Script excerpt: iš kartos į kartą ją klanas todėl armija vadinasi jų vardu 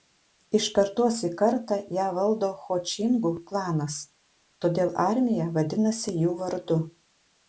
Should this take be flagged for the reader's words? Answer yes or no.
yes